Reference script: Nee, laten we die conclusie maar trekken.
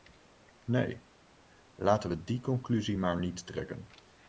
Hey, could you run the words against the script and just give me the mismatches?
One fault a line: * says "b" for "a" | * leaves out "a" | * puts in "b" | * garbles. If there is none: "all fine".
* puts in "niet"